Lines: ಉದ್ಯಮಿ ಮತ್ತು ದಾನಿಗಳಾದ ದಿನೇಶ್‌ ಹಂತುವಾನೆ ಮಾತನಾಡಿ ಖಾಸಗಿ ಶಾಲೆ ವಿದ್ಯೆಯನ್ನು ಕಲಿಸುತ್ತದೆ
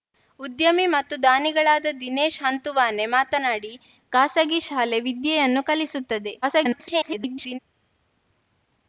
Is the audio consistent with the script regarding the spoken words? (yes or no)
no